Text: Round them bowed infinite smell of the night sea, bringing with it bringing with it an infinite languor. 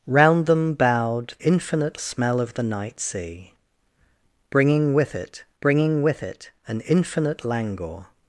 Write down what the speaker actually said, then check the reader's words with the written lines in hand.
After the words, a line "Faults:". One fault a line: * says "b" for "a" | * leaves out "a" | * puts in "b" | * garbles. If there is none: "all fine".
Round them bowed infinite smell of the night sea, bringing with it bringing with it an infinite languor.
Faults:
all fine